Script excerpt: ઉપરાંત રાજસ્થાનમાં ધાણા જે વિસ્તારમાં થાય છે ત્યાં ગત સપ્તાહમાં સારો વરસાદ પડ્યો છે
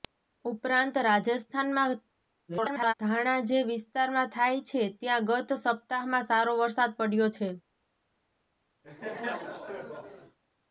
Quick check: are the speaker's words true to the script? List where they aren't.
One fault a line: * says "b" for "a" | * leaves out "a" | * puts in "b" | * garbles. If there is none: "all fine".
* garbles